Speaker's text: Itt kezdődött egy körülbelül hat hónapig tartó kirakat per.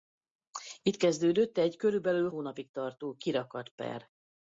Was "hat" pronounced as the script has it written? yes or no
no